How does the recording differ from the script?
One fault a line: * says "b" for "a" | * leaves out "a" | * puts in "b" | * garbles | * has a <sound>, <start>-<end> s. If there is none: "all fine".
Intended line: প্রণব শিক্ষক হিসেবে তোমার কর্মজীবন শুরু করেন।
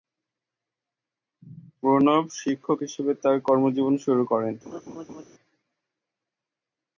* says "তার" for "তোমার"
* has a laugh, 4.7-5.2 s